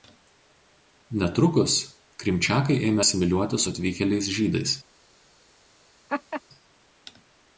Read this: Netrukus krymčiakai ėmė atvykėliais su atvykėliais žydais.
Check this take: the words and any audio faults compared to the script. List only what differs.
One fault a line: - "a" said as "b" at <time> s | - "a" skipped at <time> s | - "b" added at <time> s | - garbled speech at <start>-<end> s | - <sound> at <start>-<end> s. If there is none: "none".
- "atvykėliais" said as "asimiliuotis" at 3.0 s
- laugh at 6.1-6.4 s